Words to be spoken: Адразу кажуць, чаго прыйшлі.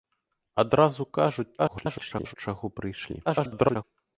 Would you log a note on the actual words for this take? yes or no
yes